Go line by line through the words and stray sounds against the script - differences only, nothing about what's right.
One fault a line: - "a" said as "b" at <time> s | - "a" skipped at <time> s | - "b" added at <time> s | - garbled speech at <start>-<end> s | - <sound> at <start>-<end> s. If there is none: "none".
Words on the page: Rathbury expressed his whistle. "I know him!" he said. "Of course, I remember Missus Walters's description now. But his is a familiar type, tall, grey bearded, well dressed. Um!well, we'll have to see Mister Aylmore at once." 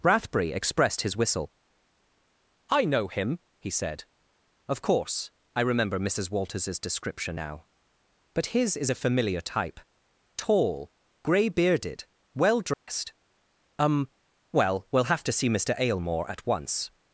- dropout at 12.7-12.9 s